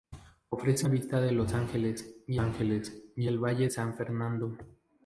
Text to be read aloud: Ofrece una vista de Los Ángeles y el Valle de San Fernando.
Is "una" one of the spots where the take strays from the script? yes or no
yes